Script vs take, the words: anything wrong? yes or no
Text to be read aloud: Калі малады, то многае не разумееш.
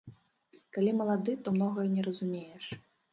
no